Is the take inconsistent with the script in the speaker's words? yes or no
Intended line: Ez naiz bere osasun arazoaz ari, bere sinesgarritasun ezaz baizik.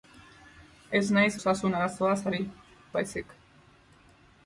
yes